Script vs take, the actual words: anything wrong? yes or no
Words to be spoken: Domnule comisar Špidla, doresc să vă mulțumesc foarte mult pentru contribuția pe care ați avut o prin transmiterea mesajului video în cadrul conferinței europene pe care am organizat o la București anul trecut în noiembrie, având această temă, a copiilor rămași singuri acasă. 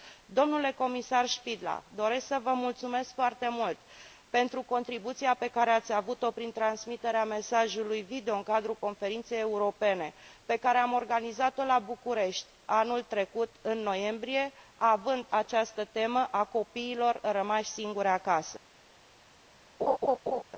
no